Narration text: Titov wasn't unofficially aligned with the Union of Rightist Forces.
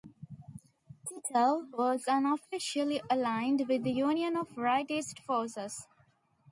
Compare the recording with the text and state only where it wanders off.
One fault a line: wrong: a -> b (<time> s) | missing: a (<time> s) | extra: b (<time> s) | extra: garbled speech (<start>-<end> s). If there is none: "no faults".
wrong: wasn't -> was (1.8 s)